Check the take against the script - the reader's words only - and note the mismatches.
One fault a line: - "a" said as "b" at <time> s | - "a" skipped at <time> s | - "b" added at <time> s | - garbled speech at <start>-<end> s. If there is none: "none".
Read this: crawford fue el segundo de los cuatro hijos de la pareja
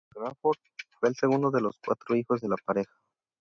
none